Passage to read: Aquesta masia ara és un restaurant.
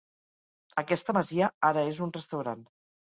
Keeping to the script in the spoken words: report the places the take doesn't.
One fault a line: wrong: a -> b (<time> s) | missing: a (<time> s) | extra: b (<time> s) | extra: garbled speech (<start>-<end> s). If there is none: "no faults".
no faults